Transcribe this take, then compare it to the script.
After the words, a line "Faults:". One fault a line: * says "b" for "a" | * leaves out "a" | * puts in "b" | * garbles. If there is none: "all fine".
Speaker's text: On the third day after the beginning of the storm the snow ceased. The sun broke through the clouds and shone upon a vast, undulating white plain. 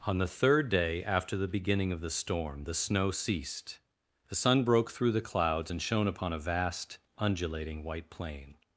On the third day after the beginning of the storm the snow ceased. The sun broke through the clouds and shone upon a vast, undulating white plain.
Faults:
all fine